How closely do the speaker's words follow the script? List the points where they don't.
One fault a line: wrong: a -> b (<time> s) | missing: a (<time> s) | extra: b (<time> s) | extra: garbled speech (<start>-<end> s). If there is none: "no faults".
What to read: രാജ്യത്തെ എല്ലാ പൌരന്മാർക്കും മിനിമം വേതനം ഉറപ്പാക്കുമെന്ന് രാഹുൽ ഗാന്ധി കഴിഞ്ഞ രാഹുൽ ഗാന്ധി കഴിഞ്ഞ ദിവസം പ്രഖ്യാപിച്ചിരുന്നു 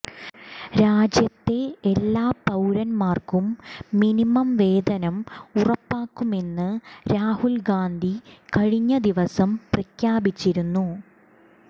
missing: രാഹുൽ ഗാന്ധി കഴിഞ്ഞ (9.0 s)